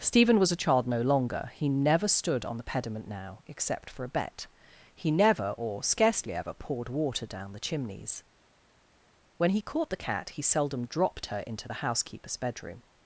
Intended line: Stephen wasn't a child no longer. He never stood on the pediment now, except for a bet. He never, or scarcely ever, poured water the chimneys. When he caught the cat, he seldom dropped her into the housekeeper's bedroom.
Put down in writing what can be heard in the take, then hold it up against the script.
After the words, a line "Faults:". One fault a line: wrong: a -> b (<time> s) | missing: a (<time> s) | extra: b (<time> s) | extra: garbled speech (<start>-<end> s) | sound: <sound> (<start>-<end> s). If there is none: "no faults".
Stephen was a child no longer. He never stood on the pediment now, except for a bet. He never, or scarcely ever, poured water down the chimneys. When he caught the cat, he seldom dropped her into the housekeeper's bedroom.
Faults:
wrong: wasn't -> was (0.4 s)
extra: down (7.2 s)